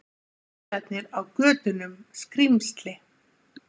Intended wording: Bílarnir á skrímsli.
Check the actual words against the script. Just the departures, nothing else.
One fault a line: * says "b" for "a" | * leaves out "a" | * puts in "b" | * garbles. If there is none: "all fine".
* puts in "götunum"